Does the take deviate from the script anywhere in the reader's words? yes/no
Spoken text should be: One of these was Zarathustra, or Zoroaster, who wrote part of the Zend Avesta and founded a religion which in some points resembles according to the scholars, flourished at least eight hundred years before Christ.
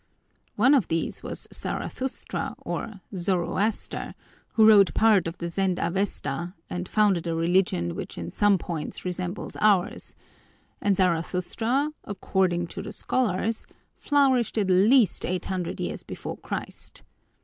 yes